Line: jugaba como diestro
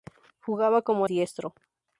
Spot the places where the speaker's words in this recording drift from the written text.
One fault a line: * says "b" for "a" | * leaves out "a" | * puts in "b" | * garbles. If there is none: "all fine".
all fine